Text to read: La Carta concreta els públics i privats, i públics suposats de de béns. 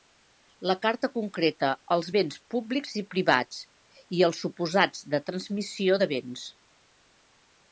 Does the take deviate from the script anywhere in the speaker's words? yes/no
yes